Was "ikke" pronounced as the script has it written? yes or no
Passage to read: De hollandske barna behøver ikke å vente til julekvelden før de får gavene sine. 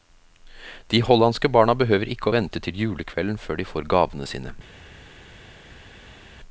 yes